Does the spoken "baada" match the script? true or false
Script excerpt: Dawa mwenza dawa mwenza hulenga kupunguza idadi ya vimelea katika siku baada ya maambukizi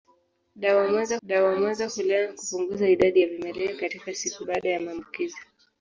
true